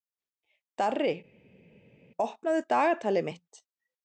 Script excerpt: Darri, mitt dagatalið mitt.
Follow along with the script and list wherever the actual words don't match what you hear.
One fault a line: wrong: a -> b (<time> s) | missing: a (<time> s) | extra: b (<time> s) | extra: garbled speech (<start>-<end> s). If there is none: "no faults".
wrong: mitt -> opnaðu (2.3 s)